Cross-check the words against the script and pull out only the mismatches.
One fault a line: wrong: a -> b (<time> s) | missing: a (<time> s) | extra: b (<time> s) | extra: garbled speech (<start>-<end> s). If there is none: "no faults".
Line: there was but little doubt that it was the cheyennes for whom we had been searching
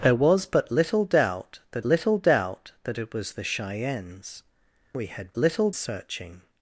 extra: little doubt that (1.8 s)
missing: for whom (4.4 s)
wrong: been -> little (5.4 s)